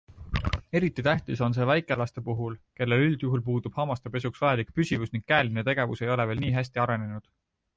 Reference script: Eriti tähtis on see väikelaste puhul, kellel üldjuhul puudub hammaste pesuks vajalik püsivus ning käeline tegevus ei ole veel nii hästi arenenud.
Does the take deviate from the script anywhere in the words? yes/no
no